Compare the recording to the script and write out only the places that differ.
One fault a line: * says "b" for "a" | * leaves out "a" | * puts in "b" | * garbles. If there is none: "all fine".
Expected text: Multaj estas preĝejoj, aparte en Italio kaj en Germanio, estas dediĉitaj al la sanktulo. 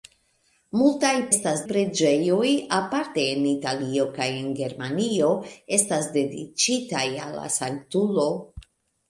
all fine